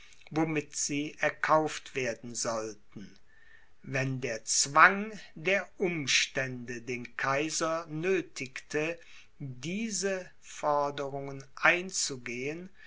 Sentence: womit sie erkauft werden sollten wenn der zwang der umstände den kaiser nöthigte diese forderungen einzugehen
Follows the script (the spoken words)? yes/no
yes